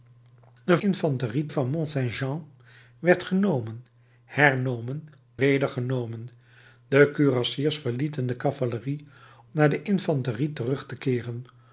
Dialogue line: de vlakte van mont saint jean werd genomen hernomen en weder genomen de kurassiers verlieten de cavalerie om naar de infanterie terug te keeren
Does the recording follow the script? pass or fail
fail